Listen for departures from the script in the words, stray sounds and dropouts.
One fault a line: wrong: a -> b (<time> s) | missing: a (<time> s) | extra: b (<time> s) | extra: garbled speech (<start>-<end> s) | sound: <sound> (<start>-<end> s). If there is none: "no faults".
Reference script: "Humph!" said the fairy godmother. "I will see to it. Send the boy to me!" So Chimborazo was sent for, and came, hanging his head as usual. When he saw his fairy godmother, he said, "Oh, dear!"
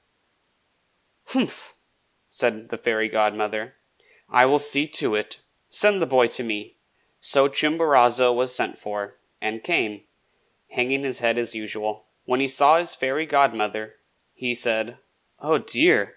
no faults